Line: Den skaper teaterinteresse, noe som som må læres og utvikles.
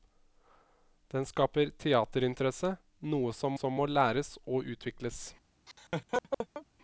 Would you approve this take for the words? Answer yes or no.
yes